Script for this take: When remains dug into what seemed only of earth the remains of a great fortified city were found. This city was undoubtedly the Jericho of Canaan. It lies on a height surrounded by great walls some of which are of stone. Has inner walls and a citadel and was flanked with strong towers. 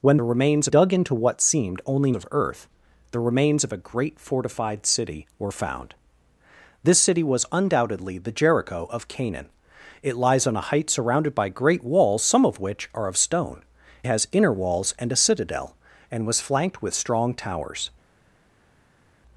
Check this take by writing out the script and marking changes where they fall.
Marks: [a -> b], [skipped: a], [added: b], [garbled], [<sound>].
When remains dug into what seemed only of earth the remains of a great fortified city were found. This city was undoubtedly the Jericho of Canaan. It lies on a height surrounded by great walls some of which are of stone. Has inner walls and a citadel and was flanked with strong towers.